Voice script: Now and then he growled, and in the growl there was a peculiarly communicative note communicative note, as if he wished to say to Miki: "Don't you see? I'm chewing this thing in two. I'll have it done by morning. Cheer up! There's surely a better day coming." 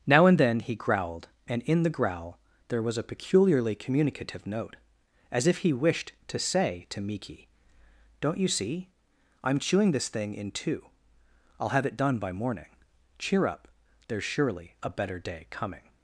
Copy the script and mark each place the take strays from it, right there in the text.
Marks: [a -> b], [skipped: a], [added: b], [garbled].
Now and then he growled, and in the growl there was a peculiarly communicative note [skipped: communicative note,] as if he wished to say to Miki: "Don't you see? I'm chewing this thing in two. I'll have it done by morning. Cheer up! There's surely a better day coming."